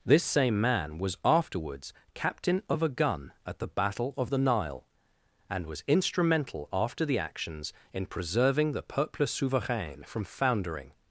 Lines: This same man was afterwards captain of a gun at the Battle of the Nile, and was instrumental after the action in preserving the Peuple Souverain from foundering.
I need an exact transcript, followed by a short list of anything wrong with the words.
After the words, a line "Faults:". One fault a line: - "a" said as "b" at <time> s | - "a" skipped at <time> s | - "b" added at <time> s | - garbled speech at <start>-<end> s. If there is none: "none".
This same man was afterwards captain of a gun at the Battle of the Nile, and was instrumental after the actions in preserving the Peuple Souverain from foundering.
Faults:
- "action" said as "actions" at 7.2 s